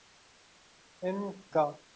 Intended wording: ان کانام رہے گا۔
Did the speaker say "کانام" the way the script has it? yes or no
no